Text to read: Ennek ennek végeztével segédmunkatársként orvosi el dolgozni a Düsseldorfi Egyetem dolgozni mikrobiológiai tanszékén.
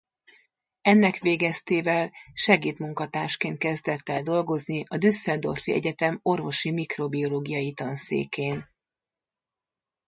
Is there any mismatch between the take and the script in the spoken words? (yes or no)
yes